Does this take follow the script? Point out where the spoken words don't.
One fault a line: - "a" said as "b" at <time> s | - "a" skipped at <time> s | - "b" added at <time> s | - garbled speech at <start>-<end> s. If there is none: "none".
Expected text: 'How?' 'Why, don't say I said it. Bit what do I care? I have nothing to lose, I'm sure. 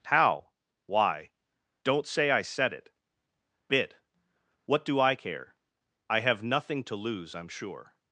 none